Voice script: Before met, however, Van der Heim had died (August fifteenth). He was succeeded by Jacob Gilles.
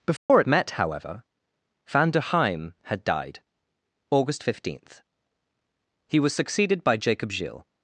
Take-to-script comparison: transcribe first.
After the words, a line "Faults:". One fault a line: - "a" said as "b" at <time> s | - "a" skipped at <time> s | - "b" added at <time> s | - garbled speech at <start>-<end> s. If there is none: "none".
Before met, however, Van der Heim had died (August fifteenth). He was succeeded by Jacob Gilles.
Faults:
none